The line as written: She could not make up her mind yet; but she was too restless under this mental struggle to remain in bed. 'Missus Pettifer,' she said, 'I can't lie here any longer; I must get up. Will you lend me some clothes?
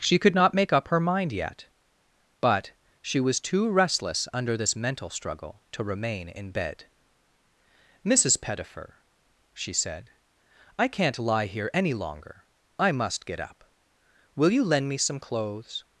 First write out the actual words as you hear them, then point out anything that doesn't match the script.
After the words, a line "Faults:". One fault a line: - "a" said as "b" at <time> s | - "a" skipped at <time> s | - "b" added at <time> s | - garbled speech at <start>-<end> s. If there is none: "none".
She could not make up her mind yet; but she was too restless under this mental struggle to remain in bed. 'Missus Pettifer,' she said, 'I can't lie here any longer; I must get up. Will you lend me some clothes?
Faults:
none